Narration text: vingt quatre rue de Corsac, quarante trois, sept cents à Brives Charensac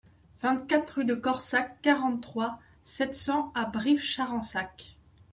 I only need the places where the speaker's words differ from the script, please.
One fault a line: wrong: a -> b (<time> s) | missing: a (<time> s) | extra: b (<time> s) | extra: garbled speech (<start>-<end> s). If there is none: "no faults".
no faults